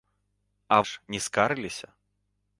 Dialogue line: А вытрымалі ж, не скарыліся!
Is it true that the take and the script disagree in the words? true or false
true